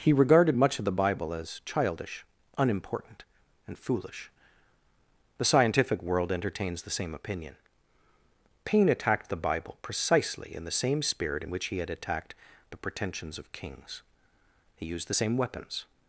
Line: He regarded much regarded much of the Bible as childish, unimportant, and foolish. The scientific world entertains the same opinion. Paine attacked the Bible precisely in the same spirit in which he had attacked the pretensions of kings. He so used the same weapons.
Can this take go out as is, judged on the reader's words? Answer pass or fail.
fail